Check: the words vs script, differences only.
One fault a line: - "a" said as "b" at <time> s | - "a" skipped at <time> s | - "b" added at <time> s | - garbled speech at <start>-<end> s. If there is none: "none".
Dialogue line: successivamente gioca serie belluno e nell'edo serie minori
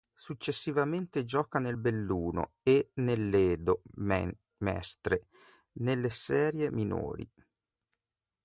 - "serie" said as "nel" at 1.6 s
- "mestre nelle" added at 4.6 s